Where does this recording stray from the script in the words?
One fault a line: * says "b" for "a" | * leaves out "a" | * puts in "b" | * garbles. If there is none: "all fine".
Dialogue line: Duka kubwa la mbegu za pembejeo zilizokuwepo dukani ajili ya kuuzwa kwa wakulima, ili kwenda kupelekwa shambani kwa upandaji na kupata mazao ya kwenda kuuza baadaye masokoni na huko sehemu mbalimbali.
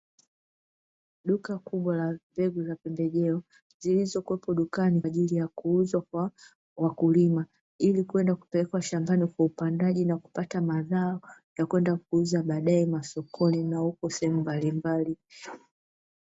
all fine